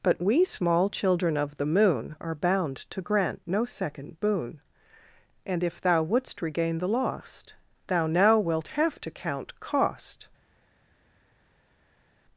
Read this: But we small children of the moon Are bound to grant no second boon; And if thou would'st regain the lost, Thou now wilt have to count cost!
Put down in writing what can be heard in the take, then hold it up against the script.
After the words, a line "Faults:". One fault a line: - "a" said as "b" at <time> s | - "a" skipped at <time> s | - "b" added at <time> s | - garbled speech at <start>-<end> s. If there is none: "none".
But we small children of the moon Are bound to grant no second boon; And if thou would'st regain the lost, Thou now wilt have to count cost!
Faults:
none